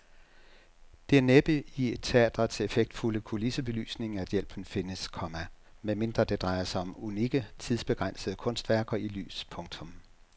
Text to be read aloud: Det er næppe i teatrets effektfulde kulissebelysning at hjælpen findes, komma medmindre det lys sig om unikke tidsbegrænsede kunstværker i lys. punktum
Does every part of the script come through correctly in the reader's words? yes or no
no